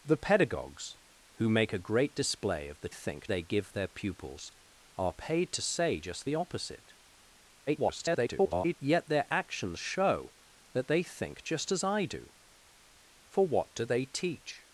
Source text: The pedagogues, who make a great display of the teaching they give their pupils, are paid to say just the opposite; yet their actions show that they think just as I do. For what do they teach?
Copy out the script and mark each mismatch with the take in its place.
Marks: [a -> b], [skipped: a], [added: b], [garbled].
The pedagogues, who make a great display of the [teaching -> think] they give their pupils, are paid to say just the opposite; [garbled] yet their actions show that they think just as I do. For what do they teach?